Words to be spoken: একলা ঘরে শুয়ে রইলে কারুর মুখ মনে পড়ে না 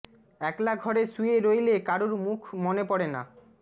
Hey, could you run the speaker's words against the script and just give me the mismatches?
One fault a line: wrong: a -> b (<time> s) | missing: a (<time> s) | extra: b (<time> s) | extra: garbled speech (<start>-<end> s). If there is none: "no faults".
no faults